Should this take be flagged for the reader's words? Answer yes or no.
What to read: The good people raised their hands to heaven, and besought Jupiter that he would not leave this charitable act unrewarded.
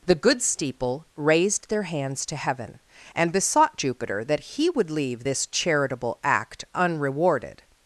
yes